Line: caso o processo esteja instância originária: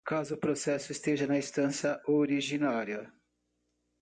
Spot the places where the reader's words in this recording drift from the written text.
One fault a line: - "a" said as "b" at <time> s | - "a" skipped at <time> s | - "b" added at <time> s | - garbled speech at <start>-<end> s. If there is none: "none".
- "na" added at 1.3 s